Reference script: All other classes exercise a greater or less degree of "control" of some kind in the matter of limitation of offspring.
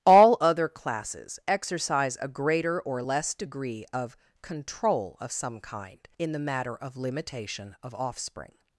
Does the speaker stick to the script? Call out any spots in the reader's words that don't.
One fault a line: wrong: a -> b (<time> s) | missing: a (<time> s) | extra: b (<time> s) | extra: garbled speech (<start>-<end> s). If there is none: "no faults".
no faults